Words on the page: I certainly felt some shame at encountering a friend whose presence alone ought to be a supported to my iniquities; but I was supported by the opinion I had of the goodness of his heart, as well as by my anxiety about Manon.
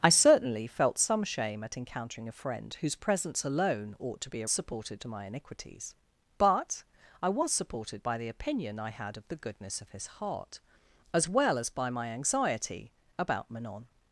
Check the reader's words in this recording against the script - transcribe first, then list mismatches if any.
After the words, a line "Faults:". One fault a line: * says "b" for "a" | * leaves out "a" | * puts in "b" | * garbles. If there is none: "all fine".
I certainly felt some shame at encountering a friend whose presence alone ought to be a supported to my iniquities; but I was supported by the opinion I had of the goodness of his heart, as well as by my anxiety about Manon.
Faults:
all fine